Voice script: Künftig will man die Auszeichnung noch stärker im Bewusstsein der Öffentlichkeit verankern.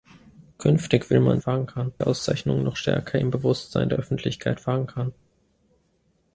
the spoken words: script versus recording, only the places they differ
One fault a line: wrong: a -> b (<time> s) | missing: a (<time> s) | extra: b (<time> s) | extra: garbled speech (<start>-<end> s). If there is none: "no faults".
wrong: die -> verankern (1.4 s)